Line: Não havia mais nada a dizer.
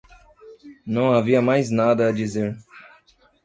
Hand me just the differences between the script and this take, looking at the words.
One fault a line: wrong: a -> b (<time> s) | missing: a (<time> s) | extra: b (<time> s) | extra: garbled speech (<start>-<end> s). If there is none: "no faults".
no faults